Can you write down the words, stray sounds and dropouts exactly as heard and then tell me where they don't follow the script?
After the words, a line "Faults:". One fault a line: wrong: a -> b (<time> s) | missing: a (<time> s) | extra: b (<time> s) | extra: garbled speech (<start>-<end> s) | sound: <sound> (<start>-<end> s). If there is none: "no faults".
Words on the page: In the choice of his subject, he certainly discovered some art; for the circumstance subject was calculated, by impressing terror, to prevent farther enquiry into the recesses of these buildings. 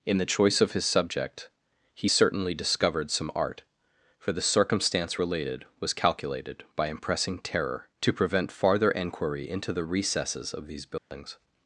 In the choice of his subject, he certainly discovered some art; for the circumstance related was calculated, by impressing terror, to prevent farther enquiry into the recesses of these buildings.
Faults:
wrong: subject -> related (5.2 s)
sound: dropout (11.0-11.1 s)